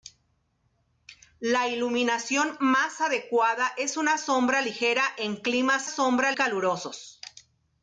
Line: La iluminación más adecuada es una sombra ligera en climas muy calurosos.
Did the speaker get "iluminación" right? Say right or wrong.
right